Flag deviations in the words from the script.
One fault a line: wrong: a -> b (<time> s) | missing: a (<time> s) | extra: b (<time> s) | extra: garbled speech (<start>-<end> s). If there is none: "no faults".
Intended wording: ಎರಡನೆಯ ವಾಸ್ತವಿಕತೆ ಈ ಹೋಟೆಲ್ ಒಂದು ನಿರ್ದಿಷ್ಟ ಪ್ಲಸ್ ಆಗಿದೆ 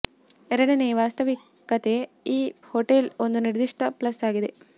no faults